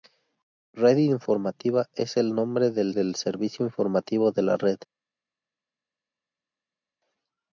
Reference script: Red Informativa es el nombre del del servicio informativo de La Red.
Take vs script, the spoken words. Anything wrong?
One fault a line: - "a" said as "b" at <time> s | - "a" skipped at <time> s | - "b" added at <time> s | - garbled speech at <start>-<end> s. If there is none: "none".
none